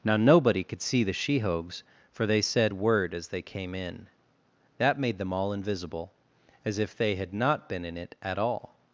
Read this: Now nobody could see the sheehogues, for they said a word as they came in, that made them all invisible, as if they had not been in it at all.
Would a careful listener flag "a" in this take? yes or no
yes